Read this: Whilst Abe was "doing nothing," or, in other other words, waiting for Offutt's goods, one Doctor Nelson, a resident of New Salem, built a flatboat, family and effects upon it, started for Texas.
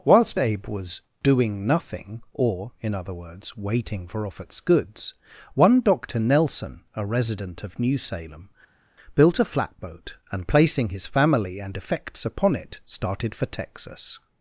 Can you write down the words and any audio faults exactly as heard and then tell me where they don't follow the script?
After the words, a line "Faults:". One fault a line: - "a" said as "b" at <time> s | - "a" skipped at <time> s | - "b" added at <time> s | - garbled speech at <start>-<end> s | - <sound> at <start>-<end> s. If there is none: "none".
Whilst Abe was "doing nothing," or, in other words, waiting for Offutt's goods, one Doctor Nelson, a resident of New Salem, built a flatboat, and, placing his family and effects upon it, started for Texas.
Faults:
- "other" skipped at 3.1 s
- "and placing his" added at 10.3 s